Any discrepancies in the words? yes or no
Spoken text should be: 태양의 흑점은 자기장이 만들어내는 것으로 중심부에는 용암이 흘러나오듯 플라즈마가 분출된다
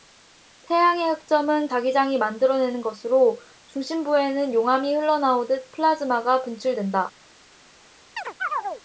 no